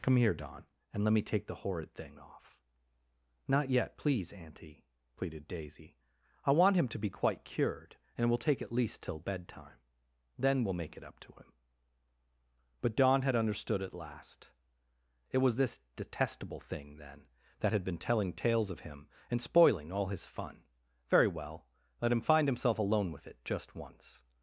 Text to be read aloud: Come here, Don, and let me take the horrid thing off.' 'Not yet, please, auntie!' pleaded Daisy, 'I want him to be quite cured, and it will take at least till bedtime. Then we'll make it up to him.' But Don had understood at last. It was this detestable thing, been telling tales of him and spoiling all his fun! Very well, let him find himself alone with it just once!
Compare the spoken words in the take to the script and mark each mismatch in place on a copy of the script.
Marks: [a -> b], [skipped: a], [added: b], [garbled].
Come here, Don, and let me take the horrid thing off.' 'Not yet, please, auntie!' pleaded Daisy, 'I want him to be quite cured, and it will take at least till bedtime. Then we'll make it up to him.' But Don had understood at last. It was this detestable thing, [added: then that had] been telling tales of him and spoiling all his fun! Very well, let him find himself alone with it just once!